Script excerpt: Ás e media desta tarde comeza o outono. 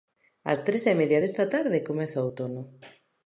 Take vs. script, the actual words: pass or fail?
fail